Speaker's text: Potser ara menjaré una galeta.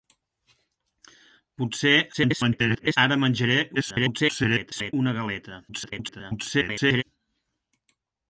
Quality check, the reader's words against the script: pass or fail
fail